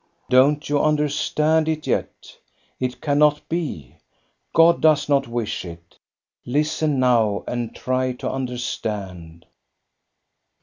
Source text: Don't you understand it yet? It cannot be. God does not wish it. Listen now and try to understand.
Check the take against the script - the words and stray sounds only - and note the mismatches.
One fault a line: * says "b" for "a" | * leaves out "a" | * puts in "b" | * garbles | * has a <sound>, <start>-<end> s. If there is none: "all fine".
all fine